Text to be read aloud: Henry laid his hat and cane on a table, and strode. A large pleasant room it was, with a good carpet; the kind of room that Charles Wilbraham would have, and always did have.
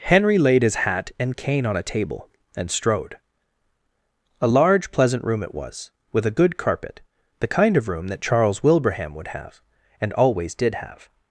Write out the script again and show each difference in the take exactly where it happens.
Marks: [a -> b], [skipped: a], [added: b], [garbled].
Henry laid his hat and cane on a table, and strode. A large pleasant room it was, with a good carpet; the kind of room that Charles Wilbraham would have, and always did have.